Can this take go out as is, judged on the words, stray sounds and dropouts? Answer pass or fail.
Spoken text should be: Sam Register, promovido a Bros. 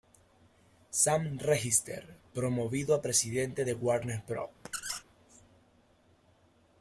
fail